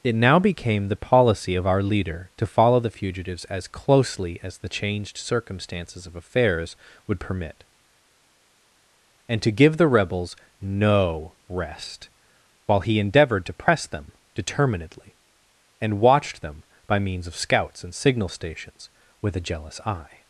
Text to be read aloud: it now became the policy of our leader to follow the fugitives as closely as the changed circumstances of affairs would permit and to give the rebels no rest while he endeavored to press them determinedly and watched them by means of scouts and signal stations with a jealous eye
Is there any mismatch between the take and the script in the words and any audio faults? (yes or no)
no